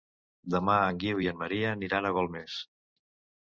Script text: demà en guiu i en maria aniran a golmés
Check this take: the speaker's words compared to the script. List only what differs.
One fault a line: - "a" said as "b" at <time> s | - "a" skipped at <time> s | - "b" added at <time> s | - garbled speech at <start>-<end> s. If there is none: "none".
none